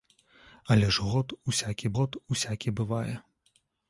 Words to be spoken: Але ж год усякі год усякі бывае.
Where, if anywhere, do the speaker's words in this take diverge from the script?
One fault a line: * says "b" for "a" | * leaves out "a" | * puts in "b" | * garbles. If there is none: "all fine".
all fine